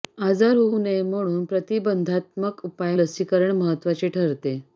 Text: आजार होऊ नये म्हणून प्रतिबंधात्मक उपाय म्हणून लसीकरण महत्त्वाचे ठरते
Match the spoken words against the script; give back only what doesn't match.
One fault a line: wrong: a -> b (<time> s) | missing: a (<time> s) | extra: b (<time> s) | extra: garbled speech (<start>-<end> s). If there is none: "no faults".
missing: म्हणून (2.9 s)